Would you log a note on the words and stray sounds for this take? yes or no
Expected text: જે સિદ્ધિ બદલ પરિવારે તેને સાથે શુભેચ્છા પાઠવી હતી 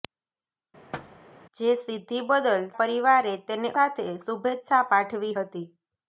yes